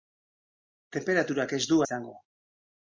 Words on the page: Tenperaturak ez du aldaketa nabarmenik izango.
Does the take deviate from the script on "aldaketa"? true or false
true